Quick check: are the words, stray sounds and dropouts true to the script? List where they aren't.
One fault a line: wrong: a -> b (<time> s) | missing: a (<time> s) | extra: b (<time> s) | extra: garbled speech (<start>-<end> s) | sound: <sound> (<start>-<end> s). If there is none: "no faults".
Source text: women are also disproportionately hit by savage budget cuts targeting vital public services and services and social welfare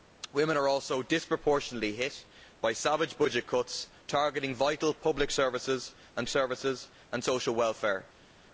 no faults